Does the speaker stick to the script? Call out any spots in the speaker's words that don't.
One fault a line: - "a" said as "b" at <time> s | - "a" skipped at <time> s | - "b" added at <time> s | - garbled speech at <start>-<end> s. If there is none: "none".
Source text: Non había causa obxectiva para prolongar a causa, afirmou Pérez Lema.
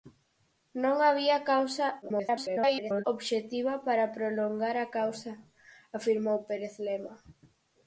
- garbled speech at 2.0-3.0 s